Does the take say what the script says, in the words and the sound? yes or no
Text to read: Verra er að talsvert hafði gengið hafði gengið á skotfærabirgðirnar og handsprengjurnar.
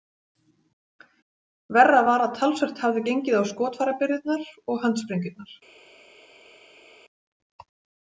no